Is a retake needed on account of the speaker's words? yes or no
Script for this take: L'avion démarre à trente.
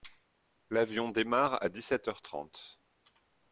yes